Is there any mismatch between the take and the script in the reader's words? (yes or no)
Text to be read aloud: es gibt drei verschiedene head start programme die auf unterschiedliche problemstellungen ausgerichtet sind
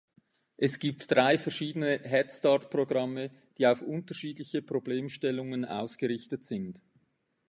no